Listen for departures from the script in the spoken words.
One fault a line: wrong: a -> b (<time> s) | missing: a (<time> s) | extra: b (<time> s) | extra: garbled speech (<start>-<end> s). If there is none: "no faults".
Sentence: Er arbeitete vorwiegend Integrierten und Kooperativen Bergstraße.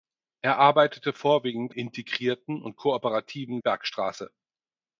no faults